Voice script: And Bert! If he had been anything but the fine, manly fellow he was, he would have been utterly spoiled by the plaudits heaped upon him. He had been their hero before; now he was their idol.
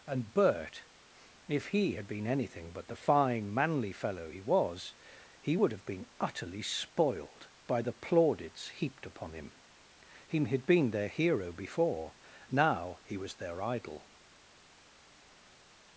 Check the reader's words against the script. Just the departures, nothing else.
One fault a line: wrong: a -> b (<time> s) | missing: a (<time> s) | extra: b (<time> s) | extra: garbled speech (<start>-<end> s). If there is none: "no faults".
no faults